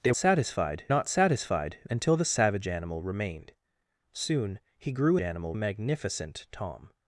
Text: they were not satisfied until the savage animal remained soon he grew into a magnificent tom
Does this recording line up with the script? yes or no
no